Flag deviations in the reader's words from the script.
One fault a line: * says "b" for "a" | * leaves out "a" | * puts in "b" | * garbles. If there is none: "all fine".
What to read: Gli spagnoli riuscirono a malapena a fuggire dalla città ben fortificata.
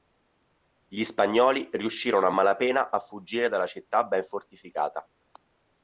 all fine